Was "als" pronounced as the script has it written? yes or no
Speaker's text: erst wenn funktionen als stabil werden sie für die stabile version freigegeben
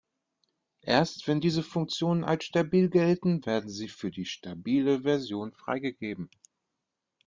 yes